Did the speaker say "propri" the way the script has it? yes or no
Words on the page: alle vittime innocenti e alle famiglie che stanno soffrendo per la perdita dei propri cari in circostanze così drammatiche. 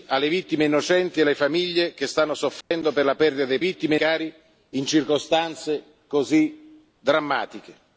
no